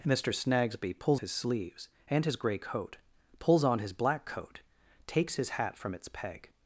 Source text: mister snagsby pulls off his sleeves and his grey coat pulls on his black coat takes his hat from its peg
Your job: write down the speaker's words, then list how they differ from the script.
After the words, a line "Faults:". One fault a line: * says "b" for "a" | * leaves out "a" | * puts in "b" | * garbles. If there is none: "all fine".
mister snagsby pulls his sleeves and his grey coat pulls on his black coat takes his hat from its peg
Faults:
* leaves out "off"